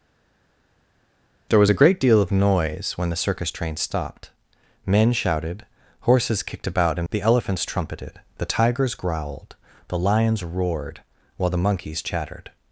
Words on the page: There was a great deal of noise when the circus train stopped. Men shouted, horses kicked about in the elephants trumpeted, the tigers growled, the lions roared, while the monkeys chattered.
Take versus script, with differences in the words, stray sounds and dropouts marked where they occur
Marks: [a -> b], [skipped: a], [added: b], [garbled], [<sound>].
There was a great deal of noise when the circus train stopped. Men shouted, horses kicked about in the elephants trumpeted, the tigers growled, the lions roared, while the monkeys chattered.